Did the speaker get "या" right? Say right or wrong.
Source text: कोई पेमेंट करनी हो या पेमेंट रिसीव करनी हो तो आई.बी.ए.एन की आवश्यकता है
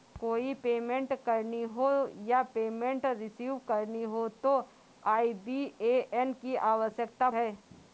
right